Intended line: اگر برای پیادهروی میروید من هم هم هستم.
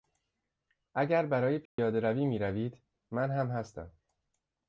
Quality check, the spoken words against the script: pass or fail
fail